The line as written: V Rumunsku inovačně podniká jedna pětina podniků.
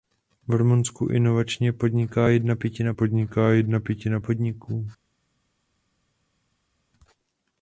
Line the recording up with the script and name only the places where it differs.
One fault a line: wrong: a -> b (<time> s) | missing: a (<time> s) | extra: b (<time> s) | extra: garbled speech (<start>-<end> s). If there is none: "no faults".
extra: podniká jedna pětina (2.9 s)